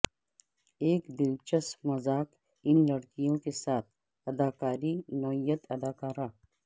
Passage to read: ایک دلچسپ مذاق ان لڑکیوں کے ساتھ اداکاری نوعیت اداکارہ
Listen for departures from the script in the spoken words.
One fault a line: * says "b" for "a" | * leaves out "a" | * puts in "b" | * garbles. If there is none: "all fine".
all fine